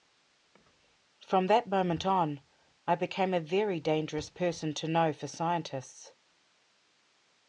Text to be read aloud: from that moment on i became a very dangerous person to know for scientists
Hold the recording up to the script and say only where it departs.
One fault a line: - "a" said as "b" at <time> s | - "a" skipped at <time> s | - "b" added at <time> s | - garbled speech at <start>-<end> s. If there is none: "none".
none